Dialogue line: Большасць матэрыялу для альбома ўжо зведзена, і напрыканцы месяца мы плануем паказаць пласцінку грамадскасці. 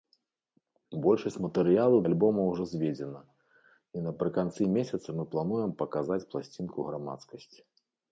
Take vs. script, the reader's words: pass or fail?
fail